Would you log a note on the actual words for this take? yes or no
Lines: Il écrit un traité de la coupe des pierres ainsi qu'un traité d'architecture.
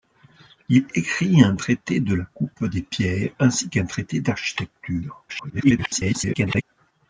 yes